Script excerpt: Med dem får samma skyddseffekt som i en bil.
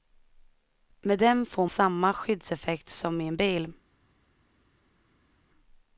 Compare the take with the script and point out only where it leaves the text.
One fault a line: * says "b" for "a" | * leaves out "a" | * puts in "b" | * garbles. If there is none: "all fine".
all fine